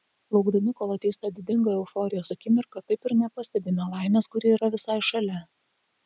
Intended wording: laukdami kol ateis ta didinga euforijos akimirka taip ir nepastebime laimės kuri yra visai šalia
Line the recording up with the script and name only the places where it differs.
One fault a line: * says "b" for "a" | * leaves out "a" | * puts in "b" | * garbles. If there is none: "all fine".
all fine